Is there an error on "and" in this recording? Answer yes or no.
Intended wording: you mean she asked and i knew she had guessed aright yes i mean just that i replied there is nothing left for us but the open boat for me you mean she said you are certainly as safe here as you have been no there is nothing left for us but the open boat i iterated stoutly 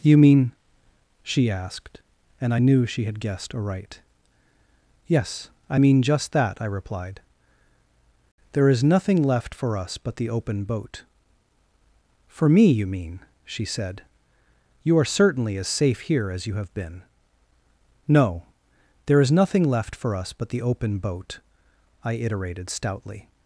no